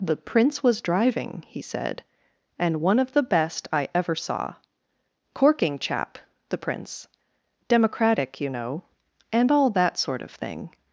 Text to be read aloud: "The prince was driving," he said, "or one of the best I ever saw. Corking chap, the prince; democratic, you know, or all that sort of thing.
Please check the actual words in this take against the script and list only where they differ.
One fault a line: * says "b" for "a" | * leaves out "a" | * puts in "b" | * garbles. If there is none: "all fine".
* says "and" for "or"
* says "and" for "or"